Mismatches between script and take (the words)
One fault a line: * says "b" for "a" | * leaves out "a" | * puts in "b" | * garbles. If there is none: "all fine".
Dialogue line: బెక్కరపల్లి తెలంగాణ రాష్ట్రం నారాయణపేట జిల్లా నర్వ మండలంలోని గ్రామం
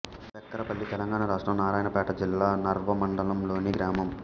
all fine